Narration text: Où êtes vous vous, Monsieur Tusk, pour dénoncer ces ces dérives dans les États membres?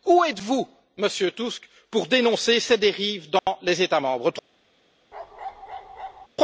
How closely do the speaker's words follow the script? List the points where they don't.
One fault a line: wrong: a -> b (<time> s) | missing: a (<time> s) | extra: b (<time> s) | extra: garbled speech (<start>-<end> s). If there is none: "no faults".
missing: vous (0.7 s)
missing: ces (2.8 s)